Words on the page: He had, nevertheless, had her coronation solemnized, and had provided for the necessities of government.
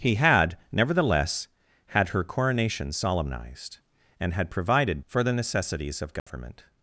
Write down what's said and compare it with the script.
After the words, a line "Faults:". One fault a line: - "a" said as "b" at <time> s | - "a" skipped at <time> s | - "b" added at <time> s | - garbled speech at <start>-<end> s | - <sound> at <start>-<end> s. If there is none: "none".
He had, nevertheless, had her coronation solemnized, and had provided for the necessities of government.
Faults:
- dropout at 6.2-6.3 s